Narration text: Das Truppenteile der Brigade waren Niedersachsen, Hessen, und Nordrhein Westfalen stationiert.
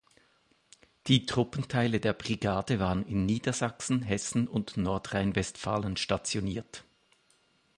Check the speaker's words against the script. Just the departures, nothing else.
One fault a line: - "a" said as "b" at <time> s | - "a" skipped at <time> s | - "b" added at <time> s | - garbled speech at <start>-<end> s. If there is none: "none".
- "Das" said as "Die" at 1.1 s
- "in" added at 3.0 s